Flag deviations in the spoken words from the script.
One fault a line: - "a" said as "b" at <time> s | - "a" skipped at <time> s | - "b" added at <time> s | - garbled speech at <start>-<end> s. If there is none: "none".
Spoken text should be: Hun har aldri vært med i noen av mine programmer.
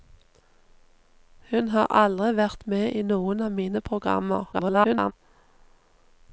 - garbled speech at 4.5-5.1 s